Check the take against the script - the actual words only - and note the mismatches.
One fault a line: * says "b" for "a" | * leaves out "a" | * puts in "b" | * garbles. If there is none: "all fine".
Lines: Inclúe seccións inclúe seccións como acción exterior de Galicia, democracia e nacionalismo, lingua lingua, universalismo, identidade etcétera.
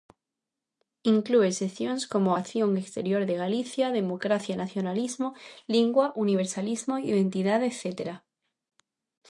* leaves out "inclúe seccións"
* leaves out "lingua"